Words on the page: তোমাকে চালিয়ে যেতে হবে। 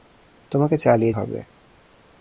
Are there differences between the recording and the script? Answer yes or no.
yes